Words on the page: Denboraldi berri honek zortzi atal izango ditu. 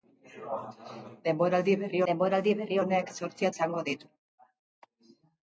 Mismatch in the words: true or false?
true